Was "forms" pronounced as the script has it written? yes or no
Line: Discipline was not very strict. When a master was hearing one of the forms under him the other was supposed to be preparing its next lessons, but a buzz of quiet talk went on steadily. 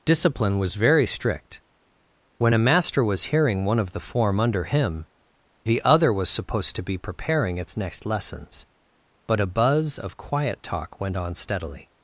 no